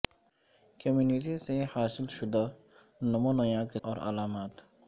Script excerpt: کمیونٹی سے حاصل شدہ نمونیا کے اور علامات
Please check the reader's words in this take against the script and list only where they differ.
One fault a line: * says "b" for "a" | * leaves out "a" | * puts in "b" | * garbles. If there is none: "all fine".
all fine